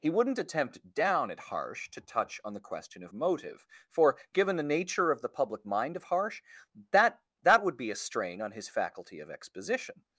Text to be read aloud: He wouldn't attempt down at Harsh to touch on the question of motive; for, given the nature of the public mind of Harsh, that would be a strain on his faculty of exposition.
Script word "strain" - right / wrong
right